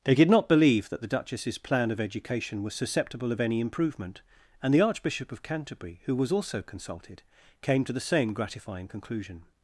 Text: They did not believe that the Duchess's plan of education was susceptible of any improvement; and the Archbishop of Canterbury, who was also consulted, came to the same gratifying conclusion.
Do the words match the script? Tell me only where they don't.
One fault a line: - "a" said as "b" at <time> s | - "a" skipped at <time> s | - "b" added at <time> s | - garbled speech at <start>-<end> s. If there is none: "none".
none